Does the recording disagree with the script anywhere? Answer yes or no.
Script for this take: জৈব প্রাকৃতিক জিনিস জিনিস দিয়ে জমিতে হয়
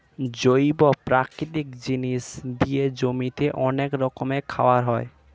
yes